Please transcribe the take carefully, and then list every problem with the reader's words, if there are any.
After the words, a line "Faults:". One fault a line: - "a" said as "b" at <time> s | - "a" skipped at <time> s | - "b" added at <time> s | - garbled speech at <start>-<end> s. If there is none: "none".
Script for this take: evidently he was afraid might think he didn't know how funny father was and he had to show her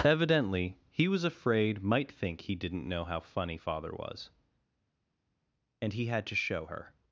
evidently he was afraid might think he didn't know how funny father was and he had to show her
Faults:
none